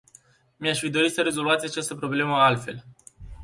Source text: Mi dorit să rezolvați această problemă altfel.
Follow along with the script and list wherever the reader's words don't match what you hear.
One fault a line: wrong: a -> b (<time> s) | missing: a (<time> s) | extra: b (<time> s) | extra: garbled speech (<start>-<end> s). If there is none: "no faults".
extra: aș fi (0.7 s)